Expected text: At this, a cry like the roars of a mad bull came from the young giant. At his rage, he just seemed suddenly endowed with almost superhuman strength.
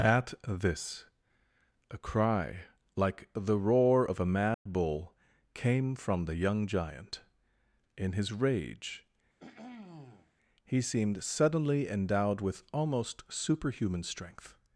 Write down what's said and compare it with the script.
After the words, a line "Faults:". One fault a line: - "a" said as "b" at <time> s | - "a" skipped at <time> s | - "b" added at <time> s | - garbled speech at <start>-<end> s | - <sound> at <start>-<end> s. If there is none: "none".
At this, a cry like the roar of a mad bull came from the young giant. In his rage, he seemed suddenly endowed with almost superhuman strength.
Faults:
- "roars" said as "roar" at 3.6 s
- dropout at 4.5-4.7 s
- "At" said as "In" at 8.0 s
- throat clearing at 9.4-10.3 s
- "just" skipped at 10.8 s